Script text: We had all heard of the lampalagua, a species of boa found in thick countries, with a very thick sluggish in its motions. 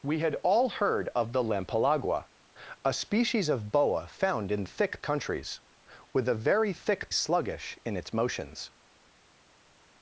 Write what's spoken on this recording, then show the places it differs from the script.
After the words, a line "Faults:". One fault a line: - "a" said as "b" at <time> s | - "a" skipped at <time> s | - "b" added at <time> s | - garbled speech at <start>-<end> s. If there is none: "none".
We had all heard of the lampalagua, a species of boa found in thick countries, with a very thick sluggish in its motions.
Faults:
none